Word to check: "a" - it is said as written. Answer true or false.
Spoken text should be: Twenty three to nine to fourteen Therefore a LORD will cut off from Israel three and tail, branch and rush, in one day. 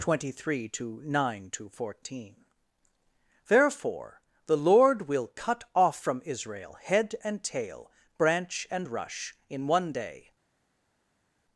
false